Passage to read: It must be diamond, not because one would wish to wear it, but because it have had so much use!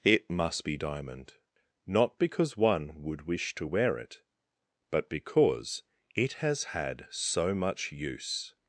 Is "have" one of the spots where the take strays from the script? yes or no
yes